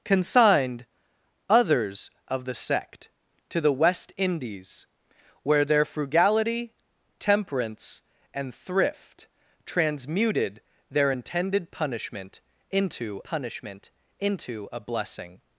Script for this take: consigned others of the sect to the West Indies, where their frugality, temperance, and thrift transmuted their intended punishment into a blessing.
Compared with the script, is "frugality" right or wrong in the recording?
right